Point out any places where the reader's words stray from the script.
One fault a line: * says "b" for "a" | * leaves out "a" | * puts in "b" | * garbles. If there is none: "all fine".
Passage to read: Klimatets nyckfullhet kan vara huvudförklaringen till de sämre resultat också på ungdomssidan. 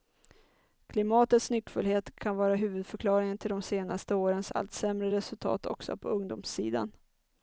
* puts in "senaste årens allt"